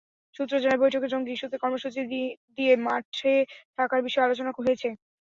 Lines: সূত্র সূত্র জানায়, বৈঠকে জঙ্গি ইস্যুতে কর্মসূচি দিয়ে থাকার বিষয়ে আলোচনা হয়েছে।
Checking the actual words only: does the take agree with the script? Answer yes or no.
no